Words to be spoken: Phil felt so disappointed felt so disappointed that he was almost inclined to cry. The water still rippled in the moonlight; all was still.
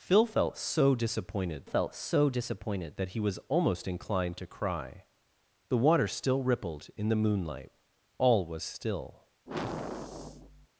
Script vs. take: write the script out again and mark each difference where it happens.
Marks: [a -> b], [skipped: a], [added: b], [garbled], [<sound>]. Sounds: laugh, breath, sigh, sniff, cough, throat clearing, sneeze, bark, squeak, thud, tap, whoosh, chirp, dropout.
Phil felt so disappointed felt so disappointed that he was almost inclined to cry. The water still rippled in the moonlight; all was still. [sigh]